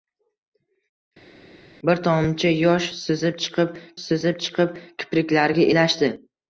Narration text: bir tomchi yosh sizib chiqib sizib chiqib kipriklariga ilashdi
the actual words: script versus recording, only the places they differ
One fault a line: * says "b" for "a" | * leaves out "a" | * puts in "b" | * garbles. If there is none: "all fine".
all fine